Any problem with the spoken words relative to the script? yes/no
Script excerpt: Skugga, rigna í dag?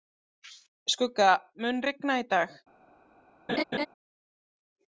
yes